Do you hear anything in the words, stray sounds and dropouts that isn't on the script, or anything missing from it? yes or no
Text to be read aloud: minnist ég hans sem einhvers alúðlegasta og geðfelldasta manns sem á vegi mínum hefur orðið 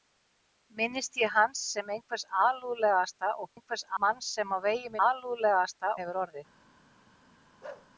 yes